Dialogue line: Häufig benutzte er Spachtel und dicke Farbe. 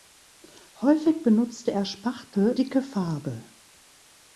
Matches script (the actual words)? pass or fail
fail